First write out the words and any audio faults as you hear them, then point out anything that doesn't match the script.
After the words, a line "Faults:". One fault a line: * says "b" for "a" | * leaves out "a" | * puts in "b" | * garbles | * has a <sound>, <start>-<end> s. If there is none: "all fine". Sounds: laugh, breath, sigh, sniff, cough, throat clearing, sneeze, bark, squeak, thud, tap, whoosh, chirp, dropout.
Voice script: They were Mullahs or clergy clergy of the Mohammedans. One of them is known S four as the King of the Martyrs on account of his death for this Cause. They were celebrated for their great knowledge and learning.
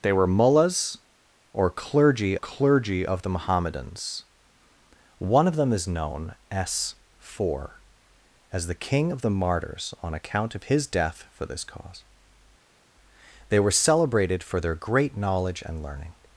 They were Mullahs or clergy clergy of the Mohammedans. One of them is known S four as the King of the Martyrs on account of his death for this Cause. They were celebrated for their great knowledge and learning.
Faults:
all fine